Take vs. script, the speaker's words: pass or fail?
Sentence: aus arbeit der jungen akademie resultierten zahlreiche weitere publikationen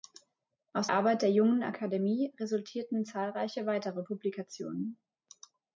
pass